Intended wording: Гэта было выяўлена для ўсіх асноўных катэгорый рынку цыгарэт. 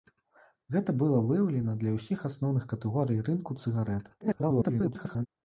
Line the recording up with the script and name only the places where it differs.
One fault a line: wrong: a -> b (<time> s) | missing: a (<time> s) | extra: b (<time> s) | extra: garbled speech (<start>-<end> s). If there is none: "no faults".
extra: garbled speech (4.2-5.3 s)